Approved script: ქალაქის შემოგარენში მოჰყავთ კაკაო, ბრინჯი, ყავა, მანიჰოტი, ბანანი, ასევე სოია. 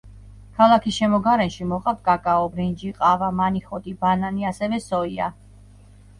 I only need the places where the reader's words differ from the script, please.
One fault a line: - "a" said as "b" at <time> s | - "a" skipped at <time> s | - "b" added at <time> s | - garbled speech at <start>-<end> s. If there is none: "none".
none